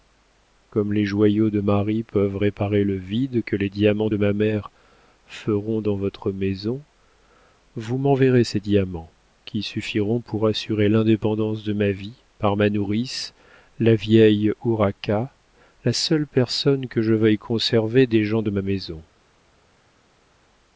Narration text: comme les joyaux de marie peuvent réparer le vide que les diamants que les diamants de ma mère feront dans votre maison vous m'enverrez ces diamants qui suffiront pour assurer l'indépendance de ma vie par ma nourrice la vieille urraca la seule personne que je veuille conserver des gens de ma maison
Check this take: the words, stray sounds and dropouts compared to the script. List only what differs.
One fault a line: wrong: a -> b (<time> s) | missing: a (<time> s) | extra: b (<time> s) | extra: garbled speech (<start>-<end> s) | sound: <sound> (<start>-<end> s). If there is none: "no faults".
missing: que les diamants (4.1 s)